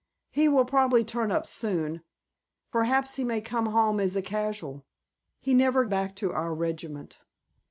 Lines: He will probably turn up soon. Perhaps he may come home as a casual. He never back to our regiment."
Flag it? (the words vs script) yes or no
no